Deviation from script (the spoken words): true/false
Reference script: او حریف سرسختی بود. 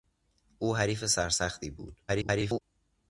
true